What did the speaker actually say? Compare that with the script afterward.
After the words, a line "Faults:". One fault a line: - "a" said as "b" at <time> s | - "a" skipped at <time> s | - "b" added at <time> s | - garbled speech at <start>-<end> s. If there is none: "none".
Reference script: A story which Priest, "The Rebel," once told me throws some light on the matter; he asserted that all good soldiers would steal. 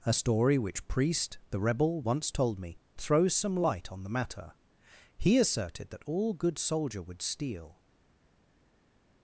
A story which Priest, "The Rebel," once told me throws some light on the matter; he asserted that all good soldier would steal.
Faults:
- "soldiers" said as "soldier" at 6.6 s